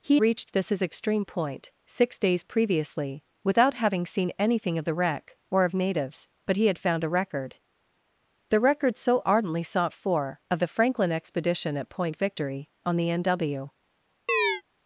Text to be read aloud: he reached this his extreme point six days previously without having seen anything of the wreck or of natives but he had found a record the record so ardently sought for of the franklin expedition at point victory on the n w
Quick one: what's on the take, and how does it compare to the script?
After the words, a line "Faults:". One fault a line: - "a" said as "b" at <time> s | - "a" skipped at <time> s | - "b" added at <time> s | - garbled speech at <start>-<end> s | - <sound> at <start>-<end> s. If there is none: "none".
he reached this his extreme point six days previously without having seen anything of the wreck or of natives but he had found a record the record so ardently sought for of the franklin expedition at point victory on the n w
Faults:
- chirp at 14.3-14.6 s